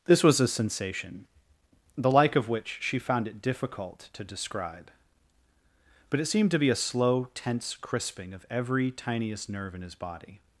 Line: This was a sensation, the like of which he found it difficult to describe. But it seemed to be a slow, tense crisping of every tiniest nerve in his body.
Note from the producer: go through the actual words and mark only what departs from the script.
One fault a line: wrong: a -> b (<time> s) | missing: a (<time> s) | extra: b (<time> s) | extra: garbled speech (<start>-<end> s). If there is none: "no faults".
wrong: he -> she (2.8 s)